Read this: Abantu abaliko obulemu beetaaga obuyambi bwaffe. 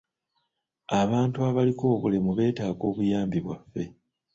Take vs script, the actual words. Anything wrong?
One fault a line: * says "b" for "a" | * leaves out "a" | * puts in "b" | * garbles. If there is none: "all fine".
all fine